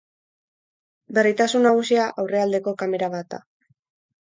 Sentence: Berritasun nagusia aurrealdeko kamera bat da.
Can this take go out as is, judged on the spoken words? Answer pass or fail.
pass